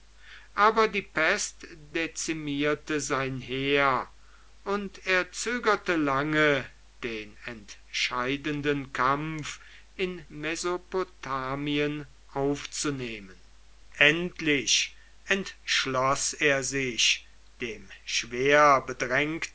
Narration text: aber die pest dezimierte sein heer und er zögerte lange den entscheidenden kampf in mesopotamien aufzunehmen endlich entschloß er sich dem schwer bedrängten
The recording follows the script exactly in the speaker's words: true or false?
true